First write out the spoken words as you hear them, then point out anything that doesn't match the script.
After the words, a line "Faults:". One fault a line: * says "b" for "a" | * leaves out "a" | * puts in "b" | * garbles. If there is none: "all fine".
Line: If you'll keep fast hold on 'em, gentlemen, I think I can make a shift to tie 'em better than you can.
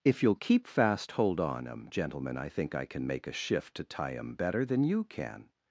If you'll keep fast hold on 'em, gentlemen, I think I can make a shift to tie 'em better than you can.
Faults:
all fine